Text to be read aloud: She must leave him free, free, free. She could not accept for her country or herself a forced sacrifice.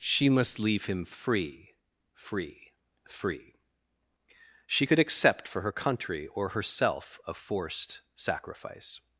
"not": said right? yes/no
no